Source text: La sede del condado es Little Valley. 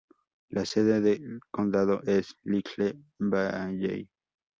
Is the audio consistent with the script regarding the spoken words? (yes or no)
yes